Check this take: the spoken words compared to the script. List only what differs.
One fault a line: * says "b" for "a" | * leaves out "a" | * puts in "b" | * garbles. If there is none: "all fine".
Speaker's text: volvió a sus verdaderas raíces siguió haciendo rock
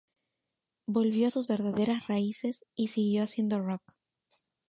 * puts in "y"